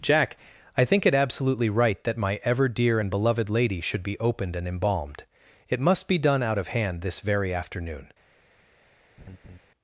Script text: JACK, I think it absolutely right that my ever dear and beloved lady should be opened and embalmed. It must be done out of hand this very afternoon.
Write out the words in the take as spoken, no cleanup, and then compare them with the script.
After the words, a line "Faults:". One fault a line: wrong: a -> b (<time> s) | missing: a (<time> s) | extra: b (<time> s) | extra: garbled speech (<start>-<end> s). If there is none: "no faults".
JACK, I think it absolutely right that my ever dear and beloved lady should be opened and embalmed. It must be done out of hand this very afternoon.
Faults:
no faults